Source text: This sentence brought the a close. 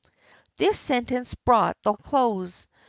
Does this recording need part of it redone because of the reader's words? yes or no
no